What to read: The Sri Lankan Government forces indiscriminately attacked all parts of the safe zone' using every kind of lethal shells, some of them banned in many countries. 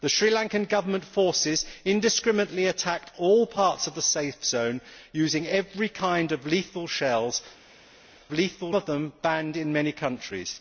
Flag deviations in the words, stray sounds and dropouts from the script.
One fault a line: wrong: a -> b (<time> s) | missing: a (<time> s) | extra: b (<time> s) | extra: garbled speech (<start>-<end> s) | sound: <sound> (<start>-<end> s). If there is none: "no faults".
wrong: some -> lethal (8.3 s)